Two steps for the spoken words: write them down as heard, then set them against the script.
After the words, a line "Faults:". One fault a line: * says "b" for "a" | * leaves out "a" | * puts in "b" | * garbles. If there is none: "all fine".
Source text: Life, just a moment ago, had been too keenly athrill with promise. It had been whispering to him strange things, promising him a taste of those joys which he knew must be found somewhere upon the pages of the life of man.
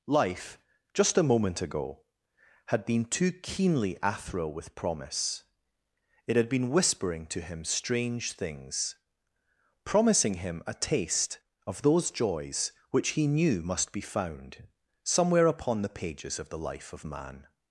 Life, just a moment ago, had been too keenly athrill with promise. It had been whispering to him strange things, promising him a taste of those joys which he knew must be found somewhere upon the pages of the life of man.
Faults:
all fine